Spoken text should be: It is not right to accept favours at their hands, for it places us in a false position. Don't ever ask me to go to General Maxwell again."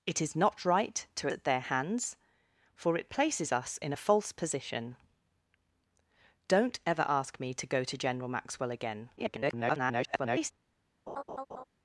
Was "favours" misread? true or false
true